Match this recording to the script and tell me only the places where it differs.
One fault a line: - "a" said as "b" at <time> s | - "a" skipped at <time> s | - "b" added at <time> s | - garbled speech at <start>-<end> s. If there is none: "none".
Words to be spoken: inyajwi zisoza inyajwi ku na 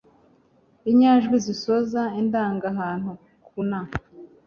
- "inyajwi" said as "indangahantu" at 2.2 s